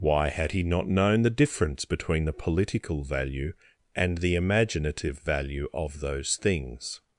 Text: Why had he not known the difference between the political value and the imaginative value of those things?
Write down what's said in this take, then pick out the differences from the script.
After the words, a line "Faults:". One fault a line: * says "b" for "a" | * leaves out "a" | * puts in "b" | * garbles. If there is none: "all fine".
Why had he not known the difference between the political value and the imaginative value of those things?
Faults:
all fine